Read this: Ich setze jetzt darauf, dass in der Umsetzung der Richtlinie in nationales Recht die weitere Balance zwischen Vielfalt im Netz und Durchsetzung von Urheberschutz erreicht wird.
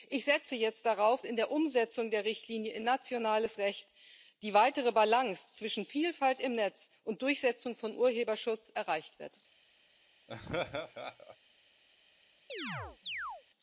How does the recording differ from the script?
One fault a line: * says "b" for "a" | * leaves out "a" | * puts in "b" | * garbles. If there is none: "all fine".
* leaves out "dass"